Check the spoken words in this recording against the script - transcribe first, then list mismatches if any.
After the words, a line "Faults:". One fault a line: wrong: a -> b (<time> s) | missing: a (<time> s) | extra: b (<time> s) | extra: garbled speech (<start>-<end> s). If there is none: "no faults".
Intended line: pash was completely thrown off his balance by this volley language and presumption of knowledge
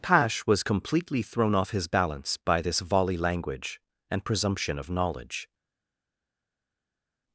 pash was completely thrown off his balance by this volley language and presumption of knowledge
Faults:
no faults